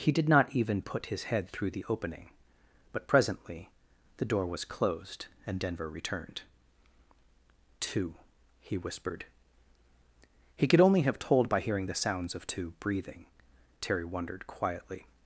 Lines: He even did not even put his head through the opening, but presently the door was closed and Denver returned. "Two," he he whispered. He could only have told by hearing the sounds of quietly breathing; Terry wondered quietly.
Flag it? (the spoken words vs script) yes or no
yes